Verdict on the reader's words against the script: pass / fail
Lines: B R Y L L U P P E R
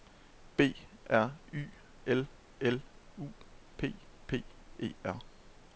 pass